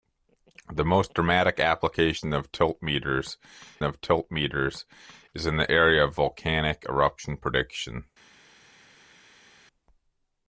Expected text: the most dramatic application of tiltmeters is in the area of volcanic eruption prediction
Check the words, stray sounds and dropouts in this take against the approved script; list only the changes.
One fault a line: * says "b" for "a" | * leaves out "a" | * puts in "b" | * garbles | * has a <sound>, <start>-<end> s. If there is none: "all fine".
* puts in "of tiltmeters"